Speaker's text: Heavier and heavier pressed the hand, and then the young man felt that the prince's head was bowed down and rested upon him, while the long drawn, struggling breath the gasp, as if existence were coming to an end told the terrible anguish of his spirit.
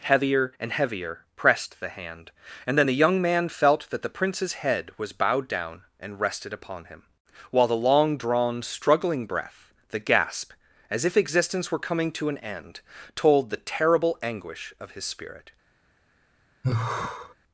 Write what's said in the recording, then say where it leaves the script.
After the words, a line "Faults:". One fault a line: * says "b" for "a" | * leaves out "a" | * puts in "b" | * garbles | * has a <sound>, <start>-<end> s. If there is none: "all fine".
Heavier and heavier pressed the hand, and then the young man felt that the prince's head was bowed down and rested upon him, while the long drawn, struggling breath the gasp, as if existence were coming to an end told the terrible anguish of his spirit.
Faults:
* has a sigh, 16.6-17.3 s